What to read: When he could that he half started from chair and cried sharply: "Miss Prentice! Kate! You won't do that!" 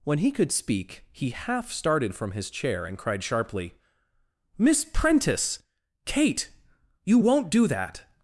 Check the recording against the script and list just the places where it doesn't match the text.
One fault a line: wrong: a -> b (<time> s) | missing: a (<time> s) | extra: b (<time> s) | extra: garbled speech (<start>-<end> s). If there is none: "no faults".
wrong: that -> speak (0.5 s)
extra: his (2.3 s)